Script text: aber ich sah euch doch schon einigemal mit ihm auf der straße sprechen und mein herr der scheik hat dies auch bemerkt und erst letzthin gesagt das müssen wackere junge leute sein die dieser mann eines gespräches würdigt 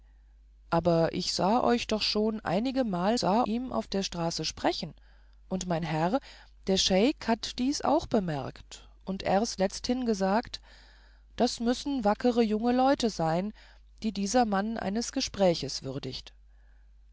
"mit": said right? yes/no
no